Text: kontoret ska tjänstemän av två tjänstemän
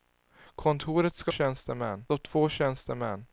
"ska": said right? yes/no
yes